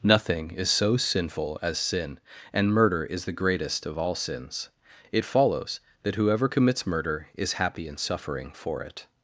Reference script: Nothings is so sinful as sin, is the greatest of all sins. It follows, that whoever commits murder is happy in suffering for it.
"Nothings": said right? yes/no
no